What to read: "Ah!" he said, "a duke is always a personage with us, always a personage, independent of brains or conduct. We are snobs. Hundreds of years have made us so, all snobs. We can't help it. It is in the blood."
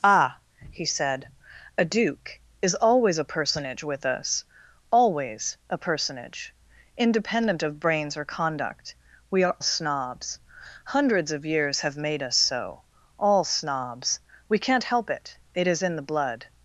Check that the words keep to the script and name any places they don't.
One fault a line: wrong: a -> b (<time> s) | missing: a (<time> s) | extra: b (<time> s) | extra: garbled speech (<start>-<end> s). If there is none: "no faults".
no faults